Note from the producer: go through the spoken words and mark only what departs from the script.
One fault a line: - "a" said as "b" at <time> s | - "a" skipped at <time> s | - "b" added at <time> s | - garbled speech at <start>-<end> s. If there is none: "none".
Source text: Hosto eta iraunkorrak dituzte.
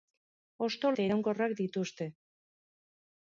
none